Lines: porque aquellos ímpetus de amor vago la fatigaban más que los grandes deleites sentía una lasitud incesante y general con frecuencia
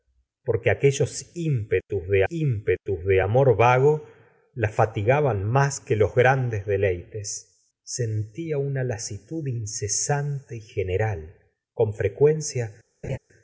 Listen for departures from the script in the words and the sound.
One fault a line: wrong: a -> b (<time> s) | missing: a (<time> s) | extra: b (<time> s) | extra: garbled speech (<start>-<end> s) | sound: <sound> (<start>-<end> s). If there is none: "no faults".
extra: ímpetus de (2.3 s)
sound: laugh (13.0-13.2 s)